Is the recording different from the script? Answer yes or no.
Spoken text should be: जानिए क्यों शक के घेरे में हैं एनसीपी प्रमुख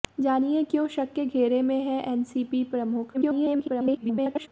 yes